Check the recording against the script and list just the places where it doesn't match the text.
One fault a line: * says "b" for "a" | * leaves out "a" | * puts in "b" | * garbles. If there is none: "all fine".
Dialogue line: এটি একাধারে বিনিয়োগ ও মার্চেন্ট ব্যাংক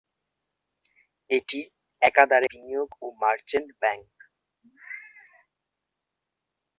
all fine